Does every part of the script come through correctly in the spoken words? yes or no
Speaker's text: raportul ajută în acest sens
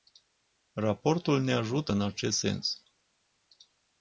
no